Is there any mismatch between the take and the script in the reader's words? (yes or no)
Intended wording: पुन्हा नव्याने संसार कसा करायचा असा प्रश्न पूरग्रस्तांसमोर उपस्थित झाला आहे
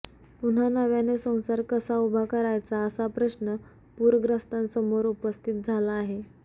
yes